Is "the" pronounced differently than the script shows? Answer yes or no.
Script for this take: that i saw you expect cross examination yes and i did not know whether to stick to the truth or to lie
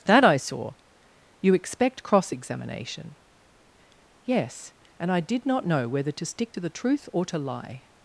no